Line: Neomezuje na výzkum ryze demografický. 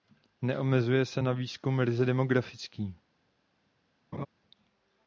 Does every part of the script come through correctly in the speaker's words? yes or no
no